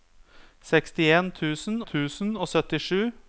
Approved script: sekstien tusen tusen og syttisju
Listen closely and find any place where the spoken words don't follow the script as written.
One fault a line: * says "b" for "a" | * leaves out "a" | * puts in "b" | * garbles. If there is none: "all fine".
all fine